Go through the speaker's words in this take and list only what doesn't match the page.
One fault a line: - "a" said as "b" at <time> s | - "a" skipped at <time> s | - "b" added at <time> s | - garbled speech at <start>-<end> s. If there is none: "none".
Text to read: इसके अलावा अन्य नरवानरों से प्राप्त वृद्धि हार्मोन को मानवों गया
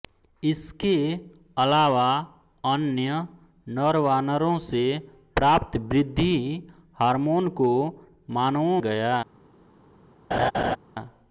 none